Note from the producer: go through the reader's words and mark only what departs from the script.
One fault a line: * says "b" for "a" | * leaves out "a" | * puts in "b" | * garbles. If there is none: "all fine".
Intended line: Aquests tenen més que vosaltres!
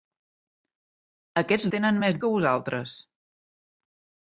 all fine